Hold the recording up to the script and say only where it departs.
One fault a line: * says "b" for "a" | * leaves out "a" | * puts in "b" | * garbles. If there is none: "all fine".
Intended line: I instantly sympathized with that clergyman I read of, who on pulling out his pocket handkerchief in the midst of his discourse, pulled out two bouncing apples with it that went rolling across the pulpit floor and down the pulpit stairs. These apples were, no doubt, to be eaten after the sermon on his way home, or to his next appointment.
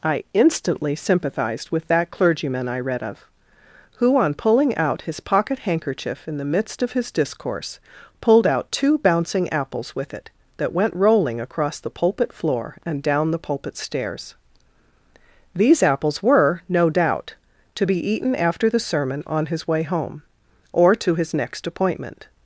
all fine